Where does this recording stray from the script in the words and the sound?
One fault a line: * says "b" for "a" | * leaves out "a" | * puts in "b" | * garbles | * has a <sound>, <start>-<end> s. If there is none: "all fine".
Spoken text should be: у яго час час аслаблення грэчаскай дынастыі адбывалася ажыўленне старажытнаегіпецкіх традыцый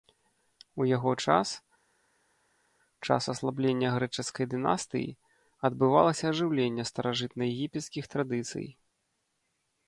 all fine